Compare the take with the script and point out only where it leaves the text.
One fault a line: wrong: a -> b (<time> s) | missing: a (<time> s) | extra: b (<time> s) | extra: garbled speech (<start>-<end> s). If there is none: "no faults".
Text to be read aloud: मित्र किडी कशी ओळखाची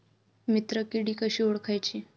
no faults